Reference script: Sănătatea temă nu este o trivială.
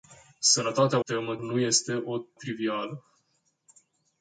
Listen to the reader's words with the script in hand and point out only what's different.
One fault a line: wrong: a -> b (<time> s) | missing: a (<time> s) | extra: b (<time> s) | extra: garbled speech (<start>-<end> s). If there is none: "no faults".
no faults